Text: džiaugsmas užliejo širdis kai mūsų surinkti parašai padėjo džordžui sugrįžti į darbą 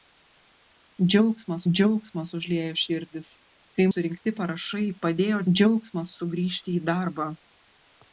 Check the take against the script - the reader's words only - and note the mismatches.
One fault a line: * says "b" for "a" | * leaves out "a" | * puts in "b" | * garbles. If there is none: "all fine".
* puts in "džiaugsmas"
* leaves out "mūsų"
* says "džiaugsmas" for "džordžui"